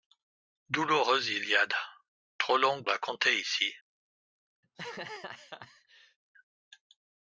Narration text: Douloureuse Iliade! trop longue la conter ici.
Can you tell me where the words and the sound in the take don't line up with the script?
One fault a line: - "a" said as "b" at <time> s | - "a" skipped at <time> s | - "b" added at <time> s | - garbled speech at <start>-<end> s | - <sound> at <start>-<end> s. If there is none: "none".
- laugh at 4.6-6.2 s